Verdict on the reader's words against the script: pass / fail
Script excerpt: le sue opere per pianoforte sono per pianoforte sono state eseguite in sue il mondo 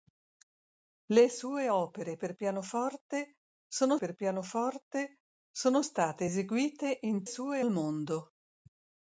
pass